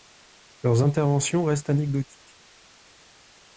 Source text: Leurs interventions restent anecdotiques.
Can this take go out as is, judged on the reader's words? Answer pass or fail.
pass